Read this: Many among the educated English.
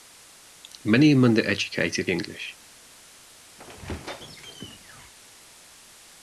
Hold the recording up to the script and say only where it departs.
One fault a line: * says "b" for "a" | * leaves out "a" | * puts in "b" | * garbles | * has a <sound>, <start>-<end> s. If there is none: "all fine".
* has a squeak, 3.6-5.1 s